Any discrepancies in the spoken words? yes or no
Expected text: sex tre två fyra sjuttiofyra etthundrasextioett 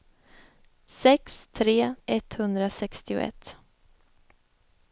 yes